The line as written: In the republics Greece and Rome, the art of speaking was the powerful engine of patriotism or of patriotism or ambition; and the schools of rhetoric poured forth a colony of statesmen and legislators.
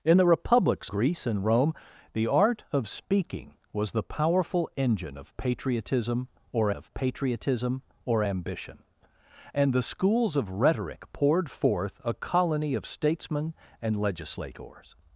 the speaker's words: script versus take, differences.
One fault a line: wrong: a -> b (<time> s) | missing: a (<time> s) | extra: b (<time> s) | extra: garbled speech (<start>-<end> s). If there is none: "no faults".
no faults